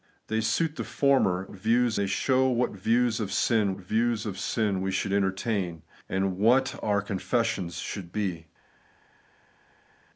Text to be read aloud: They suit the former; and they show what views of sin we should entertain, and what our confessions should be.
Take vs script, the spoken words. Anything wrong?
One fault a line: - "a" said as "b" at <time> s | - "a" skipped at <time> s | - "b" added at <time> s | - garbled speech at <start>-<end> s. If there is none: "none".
- "and" said as "views" at 1.5 s
- "views of sin" added at 3.8 s